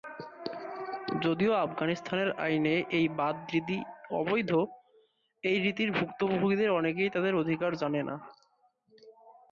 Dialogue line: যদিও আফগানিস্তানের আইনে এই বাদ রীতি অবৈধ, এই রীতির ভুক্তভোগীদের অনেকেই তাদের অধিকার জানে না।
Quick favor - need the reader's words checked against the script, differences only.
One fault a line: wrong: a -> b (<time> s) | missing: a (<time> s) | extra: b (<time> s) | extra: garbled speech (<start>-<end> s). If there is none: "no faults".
no faults